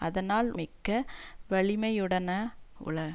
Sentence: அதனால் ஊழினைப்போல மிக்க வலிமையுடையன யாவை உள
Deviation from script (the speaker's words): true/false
true